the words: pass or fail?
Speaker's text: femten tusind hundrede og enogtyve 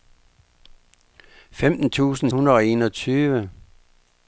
pass